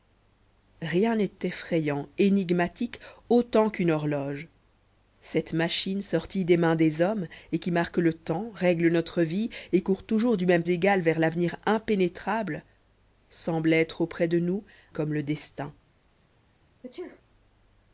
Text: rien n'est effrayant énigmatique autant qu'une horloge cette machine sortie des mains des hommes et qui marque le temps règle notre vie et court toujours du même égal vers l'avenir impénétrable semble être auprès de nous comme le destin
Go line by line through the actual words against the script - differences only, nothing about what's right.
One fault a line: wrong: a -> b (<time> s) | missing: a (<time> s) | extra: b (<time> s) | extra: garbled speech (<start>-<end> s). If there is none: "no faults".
no faults